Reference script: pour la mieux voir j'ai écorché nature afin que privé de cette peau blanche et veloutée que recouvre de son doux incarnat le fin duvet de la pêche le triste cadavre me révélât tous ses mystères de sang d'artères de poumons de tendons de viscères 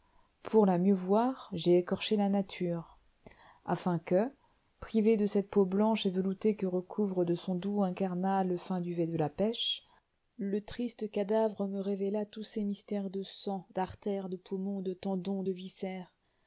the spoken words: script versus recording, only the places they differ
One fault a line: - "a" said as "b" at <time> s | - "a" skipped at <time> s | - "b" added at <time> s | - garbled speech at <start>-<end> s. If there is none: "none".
- "la" added at 2.1 s